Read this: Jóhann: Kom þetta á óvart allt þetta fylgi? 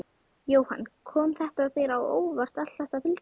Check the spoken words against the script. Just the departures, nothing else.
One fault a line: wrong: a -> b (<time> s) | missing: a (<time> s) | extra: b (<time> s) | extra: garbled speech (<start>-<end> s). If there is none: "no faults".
extra: þér (1.8 s)